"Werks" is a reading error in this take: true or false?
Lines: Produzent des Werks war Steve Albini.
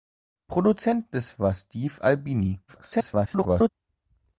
true